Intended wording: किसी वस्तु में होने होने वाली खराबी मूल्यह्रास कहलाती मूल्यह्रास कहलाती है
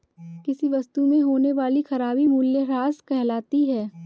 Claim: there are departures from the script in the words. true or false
true